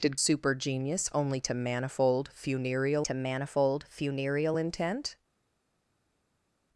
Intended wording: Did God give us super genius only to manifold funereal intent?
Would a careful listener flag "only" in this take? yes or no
yes